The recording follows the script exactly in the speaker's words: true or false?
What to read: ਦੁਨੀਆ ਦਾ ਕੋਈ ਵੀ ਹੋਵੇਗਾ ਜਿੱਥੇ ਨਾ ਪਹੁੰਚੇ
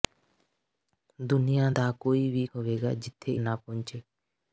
true